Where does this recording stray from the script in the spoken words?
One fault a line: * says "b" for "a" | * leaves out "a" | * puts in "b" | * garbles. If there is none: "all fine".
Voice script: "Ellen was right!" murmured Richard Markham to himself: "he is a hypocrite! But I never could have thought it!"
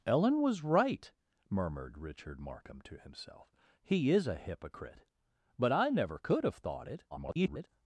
* garbles